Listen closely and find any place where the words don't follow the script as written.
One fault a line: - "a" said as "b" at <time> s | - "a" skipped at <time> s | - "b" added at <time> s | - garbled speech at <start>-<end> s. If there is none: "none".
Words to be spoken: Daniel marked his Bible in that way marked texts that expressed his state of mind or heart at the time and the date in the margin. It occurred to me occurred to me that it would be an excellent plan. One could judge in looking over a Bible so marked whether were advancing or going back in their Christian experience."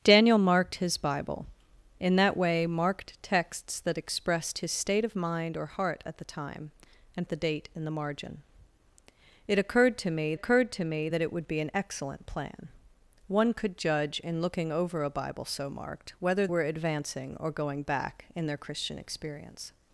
none